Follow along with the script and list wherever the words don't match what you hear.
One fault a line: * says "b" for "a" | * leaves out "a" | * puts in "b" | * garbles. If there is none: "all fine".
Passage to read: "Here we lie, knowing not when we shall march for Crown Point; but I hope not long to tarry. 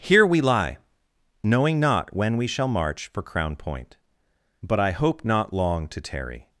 all fine